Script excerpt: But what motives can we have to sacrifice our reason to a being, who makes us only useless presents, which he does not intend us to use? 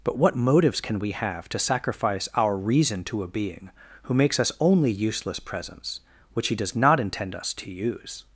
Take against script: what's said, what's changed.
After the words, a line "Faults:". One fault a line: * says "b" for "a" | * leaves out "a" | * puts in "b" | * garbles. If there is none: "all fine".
But what motives can we have to sacrifice our reason to a being, who makes us only useless presents, which he does not intend us to use?
Faults:
all fine